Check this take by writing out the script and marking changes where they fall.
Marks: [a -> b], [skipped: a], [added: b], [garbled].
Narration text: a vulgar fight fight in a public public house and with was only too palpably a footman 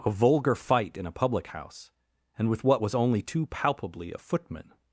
a vulgar fight [skipped: fight] in a public [skipped: public] house and with [added: what] was only too palpably a footman